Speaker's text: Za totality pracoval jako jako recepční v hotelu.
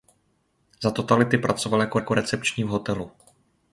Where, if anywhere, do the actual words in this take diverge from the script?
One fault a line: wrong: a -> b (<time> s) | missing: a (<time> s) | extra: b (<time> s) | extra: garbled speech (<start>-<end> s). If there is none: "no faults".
no faults